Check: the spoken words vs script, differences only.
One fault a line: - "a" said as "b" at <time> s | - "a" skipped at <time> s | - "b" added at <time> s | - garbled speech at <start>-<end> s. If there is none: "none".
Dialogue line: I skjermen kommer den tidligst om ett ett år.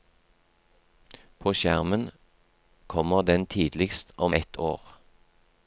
- "I" said as "På" at 1.4 s
- "ett" skipped at 4.6 s